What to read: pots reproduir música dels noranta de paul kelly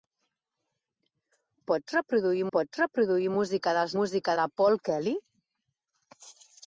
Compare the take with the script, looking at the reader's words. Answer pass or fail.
fail